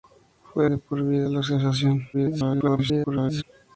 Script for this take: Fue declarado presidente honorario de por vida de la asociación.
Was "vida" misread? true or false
false